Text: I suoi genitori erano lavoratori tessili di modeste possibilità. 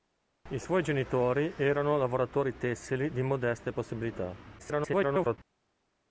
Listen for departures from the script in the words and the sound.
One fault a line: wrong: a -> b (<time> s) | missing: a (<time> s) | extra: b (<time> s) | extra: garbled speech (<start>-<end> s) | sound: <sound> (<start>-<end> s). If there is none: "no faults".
extra: garbled speech (4.6-5.4 s)